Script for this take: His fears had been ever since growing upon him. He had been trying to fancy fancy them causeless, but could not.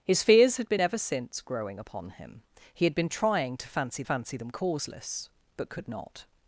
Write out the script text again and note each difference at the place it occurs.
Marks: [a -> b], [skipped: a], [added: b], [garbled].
His fears had been ever since growing upon him. He had been trying to fancy fancy them causeless, but could not.